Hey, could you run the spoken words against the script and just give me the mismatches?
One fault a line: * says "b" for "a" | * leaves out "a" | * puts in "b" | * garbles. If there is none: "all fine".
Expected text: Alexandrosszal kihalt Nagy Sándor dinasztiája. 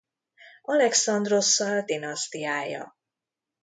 * leaves out "kihalt Nagy Sándor"